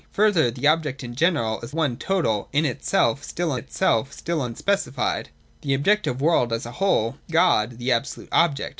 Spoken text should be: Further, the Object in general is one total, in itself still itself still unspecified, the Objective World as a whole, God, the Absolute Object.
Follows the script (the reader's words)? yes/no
yes